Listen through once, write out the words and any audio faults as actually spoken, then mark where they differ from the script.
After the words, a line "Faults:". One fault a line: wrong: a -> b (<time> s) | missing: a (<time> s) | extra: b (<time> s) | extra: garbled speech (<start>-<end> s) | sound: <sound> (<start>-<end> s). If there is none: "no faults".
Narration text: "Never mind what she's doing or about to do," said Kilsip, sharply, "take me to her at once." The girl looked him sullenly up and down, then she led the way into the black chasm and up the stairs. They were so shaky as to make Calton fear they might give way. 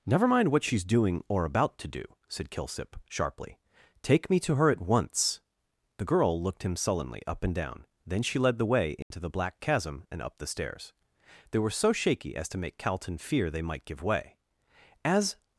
"Never mind what she's doing or about to do," said Kilsip, sharply, "take me to her at once." The girl looked him sullenly up and down, then she led the way into the black chasm and up the stairs. They were so shaky as to make Calton fear they might give way. As
Faults:
sound: dropout (9.0-9.1 s)
extra: As (15.0 s)